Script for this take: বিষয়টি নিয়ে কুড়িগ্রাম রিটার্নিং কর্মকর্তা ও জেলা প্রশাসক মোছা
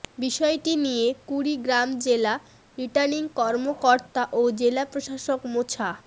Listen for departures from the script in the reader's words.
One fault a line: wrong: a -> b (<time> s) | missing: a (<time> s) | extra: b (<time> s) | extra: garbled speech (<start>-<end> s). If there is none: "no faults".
extra: জেলা (2.0 s)